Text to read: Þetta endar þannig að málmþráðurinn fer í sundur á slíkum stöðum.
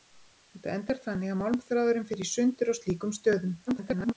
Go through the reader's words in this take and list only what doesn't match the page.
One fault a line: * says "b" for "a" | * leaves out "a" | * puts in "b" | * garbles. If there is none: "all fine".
* garbles